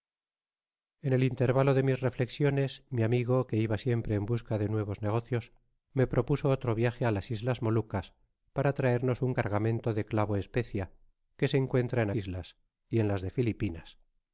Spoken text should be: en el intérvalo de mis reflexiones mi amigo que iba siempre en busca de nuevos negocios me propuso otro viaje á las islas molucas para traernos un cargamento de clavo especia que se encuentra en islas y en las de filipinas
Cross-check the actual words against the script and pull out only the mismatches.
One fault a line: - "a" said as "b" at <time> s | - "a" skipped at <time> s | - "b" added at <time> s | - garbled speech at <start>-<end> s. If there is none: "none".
none